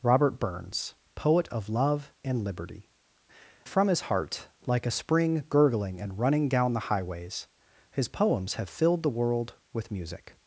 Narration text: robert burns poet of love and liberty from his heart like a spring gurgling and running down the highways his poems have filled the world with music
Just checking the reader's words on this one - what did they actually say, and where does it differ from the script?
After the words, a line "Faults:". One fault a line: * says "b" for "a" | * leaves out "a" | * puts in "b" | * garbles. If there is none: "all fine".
robert burns poet of love and liberty from his heart like a spring gurgling and running down the highways his poems have filled the world with music
Faults:
all fine